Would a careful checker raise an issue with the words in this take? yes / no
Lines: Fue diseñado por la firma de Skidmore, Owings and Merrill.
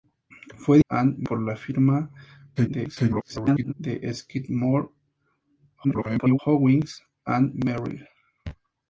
yes